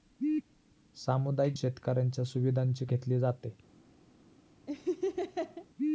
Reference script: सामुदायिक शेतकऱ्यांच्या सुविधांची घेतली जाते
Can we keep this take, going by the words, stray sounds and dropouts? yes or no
no